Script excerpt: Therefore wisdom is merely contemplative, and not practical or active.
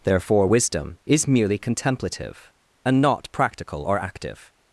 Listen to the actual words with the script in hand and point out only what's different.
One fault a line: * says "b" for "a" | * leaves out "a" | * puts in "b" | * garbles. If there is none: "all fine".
all fine